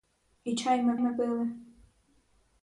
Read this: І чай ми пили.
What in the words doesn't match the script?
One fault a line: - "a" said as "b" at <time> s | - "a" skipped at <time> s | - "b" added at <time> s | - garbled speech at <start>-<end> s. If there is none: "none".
- "ми" added at 1.0 s